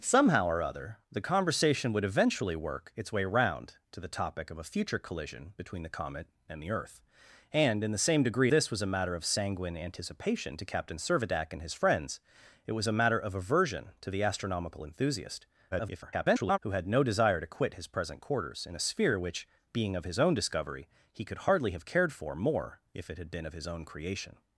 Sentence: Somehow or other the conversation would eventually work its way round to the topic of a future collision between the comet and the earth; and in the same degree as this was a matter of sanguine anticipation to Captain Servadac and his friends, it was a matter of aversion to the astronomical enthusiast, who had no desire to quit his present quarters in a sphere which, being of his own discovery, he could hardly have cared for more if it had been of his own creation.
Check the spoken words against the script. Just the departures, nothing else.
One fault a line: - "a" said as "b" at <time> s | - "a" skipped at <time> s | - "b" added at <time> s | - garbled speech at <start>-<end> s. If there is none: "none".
- "as" skipped at 8.5 s
- garbled speech at 15.7-16.6 s